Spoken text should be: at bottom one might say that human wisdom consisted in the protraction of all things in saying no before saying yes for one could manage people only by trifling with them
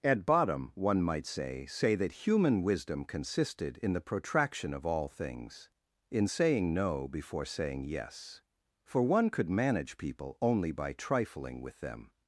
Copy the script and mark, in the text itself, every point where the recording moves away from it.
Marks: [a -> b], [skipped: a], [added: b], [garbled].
at bottom one might say [added: say] that human wisdom consisted in the protraction of all things in saying no before saying yes for one could manage people only by trifling with them